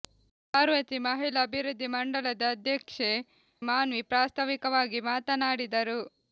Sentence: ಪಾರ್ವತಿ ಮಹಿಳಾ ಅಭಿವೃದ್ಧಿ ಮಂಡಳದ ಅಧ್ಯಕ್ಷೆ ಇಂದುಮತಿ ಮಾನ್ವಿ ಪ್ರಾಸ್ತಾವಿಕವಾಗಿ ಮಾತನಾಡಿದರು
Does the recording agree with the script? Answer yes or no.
no